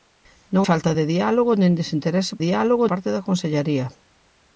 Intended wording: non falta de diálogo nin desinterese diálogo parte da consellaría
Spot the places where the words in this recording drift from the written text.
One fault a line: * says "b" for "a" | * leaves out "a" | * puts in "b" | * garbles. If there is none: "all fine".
all fine